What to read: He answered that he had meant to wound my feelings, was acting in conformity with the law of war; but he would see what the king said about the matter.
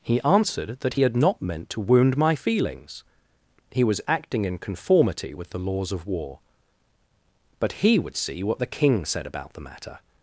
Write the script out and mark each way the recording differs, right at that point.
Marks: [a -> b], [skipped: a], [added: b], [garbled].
He answered that he had [added: not] meant to wound my feelings, [added: he] was acting in conformity with the [law -> laws] of war; but he would see what the king said about the matter.